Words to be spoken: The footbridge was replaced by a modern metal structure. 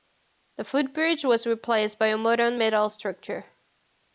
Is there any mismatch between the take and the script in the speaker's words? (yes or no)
no